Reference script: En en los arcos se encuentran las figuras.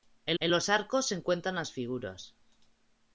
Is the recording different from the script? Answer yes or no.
no